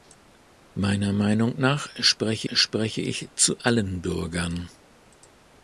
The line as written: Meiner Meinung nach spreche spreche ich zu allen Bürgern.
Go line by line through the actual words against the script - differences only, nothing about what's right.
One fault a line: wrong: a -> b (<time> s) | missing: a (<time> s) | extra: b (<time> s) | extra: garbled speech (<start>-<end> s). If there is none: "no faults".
no faults